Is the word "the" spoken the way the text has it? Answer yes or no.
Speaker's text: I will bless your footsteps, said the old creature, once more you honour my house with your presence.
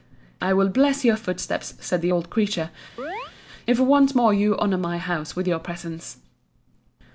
yes